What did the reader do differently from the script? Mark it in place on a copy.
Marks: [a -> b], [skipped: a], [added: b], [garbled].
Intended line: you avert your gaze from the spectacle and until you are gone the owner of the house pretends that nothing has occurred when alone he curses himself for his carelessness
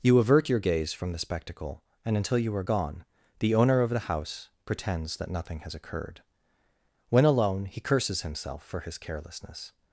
you avert your gaze from the spectacle and until you are gone the owner of the house pretends that nothing has occurred when alone he curses himself for his carelessness